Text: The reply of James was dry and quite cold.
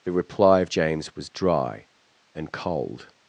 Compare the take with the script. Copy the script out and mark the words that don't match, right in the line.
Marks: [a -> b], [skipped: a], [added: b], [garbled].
The reply of James was dry and [skipped: quite] cold.